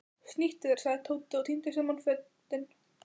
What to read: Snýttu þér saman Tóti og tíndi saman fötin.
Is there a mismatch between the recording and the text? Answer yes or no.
yes